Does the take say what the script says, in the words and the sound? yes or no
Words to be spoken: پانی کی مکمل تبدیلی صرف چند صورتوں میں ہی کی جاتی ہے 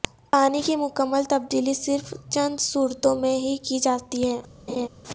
no